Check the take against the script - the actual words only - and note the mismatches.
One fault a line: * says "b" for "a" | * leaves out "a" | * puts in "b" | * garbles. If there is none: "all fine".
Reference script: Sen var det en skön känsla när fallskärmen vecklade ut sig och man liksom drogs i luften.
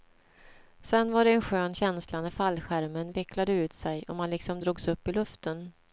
* puts in "upp"